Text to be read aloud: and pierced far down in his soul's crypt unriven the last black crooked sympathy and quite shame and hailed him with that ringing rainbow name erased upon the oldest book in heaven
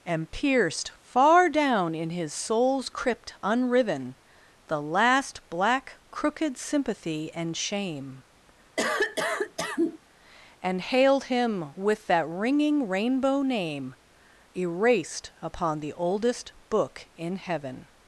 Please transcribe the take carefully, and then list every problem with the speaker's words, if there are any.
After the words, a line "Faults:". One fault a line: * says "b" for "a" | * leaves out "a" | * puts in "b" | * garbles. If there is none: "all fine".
and pierced far down in his soul's crypt unriven the last black crooked sympathy and shame and hailed him with that ringing rainbow name erased upon the oldest book in heaven
Faults:
* leaves out "quite"